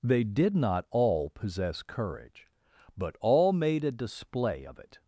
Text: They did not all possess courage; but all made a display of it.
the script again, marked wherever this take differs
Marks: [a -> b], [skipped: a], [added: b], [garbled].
They did not all possess courage; but all made a display of it.